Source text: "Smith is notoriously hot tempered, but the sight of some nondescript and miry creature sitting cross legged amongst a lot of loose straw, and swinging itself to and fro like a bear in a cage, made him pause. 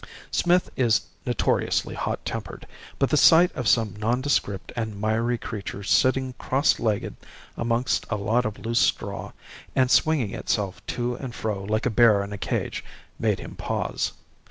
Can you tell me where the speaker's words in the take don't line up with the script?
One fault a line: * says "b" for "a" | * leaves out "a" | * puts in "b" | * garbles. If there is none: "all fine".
all fine